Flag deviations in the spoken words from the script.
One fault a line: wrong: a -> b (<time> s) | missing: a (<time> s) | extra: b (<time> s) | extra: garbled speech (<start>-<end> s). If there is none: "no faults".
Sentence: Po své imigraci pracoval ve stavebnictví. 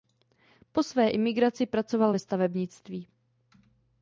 no faults